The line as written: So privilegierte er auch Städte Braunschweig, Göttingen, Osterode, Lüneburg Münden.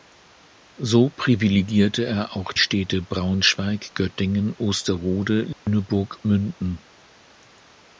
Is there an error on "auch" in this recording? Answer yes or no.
no